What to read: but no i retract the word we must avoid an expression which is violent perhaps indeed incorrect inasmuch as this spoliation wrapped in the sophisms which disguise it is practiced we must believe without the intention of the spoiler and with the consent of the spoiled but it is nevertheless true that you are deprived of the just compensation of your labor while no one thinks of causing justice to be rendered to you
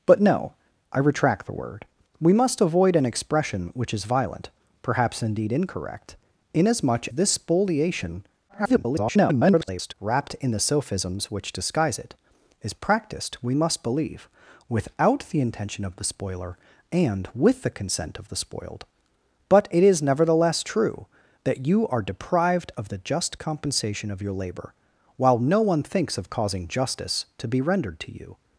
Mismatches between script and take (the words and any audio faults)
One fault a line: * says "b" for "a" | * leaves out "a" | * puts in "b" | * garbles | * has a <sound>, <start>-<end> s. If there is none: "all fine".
* leaves out "as"
* garbles